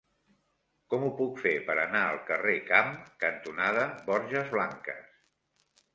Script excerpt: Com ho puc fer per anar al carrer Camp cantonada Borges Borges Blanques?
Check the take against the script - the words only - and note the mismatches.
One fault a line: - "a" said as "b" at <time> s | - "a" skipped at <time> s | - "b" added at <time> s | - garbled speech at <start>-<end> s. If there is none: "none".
- "Borges" skipped at 4.5 s